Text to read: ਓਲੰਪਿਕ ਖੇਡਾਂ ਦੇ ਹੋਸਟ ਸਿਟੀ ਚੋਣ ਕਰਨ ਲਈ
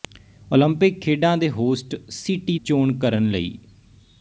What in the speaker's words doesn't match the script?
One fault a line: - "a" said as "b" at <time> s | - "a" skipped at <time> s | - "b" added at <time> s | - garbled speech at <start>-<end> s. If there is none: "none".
none